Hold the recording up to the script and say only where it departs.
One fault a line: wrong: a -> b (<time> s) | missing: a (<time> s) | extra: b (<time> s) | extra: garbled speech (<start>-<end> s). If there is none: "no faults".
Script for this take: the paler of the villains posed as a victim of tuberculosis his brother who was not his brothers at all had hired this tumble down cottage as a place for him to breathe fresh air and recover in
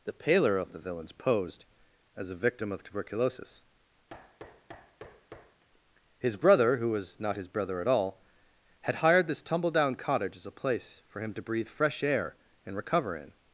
wrong: brothers -> brother (7.5 s)